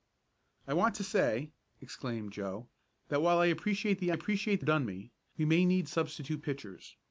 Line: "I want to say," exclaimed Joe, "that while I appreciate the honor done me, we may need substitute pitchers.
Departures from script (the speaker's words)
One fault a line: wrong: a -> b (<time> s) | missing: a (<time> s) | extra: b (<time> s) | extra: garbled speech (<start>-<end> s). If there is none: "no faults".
wrong: honor -> appreciate (4.1 s)